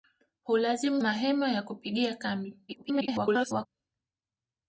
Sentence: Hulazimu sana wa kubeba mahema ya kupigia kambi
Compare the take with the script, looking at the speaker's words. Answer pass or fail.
fail